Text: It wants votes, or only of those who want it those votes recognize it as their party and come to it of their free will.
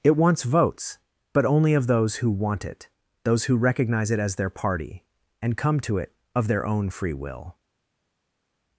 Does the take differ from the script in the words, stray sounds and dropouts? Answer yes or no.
yes